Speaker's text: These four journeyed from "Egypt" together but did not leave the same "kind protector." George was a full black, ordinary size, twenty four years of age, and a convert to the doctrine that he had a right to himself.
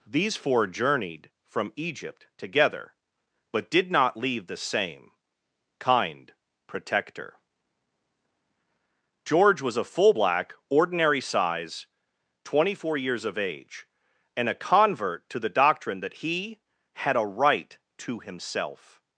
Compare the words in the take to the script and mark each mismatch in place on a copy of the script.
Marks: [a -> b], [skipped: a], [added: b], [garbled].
These four journeyed from "Egypt" together but did not leave the same "kind protector." George was a full black, ordinary size, twenty four years of age, and a convert to the doctrine that he had a right to himself.